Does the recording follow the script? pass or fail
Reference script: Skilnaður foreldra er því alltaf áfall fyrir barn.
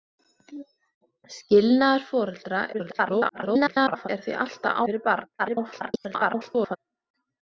fail